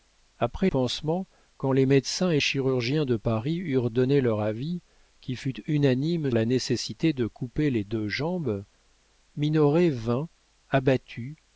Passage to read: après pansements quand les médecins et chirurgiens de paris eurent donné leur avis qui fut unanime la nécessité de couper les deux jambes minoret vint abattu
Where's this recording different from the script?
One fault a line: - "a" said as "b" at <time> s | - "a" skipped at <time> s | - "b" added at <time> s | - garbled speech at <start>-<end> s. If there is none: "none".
none